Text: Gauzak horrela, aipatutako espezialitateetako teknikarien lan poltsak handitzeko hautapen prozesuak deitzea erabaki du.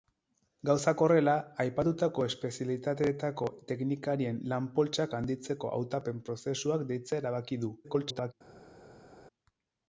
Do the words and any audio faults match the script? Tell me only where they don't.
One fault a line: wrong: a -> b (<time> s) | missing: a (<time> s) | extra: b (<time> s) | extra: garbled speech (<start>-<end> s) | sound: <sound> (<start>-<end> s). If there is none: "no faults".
extra: garbled speech (7.8-8.3 s)